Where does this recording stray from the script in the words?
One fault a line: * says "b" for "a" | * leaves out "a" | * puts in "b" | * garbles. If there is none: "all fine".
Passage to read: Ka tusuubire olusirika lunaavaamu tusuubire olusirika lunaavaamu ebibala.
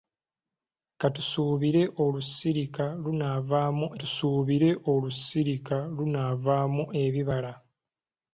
all fine